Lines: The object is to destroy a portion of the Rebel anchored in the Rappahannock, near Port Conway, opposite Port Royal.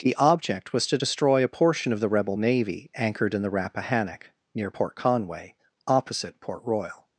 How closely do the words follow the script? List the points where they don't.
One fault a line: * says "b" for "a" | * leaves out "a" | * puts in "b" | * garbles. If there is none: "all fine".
* says "was" for "is"
* puts in "navy"